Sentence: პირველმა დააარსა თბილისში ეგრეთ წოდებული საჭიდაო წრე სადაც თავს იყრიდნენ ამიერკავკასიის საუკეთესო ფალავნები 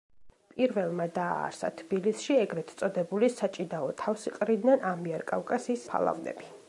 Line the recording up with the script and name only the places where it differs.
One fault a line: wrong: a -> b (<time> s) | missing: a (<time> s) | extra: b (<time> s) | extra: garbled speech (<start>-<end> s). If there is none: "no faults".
missing: წრე სადაც (3.9 s)
missing: საუკეთესო (5.9 s)